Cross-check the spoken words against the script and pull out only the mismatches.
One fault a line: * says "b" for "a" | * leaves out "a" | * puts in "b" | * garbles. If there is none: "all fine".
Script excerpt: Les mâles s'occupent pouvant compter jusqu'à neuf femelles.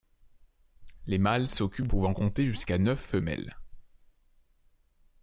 all fine